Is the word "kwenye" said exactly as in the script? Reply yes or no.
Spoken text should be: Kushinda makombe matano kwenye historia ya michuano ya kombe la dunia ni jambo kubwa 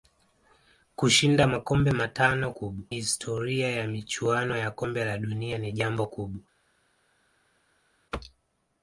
no